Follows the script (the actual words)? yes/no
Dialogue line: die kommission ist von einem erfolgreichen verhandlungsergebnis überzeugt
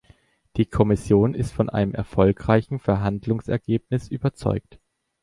yes